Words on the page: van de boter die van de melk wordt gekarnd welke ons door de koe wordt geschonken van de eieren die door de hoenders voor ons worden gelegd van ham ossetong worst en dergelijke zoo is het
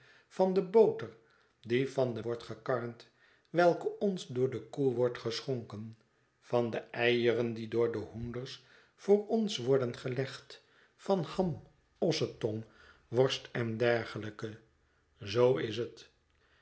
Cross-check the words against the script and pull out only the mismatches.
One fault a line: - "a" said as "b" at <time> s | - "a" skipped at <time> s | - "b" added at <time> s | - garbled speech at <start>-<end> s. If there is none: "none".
- "melk" skipped at 2.2 s